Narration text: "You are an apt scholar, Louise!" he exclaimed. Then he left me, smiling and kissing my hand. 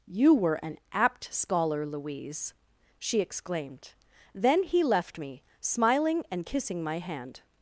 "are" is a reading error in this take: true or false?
true